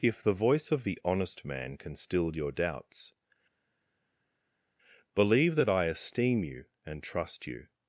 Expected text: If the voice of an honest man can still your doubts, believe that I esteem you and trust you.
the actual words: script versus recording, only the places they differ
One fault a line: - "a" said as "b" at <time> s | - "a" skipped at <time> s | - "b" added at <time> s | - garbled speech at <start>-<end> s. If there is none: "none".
- "an" said as "the" at 0.8 s